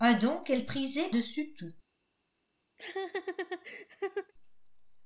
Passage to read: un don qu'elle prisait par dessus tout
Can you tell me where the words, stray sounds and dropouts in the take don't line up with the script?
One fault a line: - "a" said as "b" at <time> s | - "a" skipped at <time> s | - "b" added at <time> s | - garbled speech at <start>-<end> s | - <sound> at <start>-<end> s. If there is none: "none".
- "par" skipped at 1.1 s
- laugh at 2.8-4.3 s